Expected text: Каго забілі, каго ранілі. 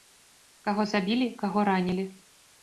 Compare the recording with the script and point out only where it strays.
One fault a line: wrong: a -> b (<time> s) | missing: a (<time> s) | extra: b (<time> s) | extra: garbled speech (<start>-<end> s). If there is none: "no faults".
no faults